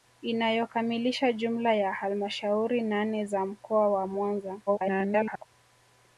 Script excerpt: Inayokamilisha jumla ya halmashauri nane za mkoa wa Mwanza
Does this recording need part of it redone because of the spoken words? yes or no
yes